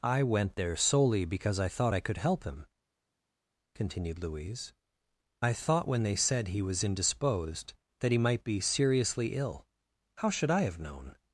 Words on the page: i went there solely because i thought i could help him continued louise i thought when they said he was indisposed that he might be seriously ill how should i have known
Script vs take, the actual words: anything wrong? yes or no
no